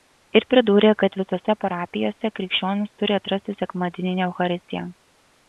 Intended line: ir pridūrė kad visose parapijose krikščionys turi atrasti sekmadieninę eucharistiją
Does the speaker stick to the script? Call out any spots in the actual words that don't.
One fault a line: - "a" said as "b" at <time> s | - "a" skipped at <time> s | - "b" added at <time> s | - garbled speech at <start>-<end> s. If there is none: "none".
none